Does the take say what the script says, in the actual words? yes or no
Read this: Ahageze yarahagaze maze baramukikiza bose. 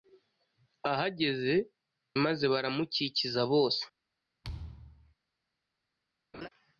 no